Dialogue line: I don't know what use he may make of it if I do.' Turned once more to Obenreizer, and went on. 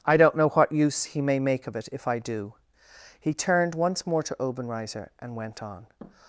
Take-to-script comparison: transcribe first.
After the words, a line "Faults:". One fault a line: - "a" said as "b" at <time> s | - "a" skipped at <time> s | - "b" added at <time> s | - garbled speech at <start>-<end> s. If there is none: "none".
I don't know what use he may make of it if I do.' He turned once more to Obenreizer, and went on.
Faults:
- "He" added at 3.2 s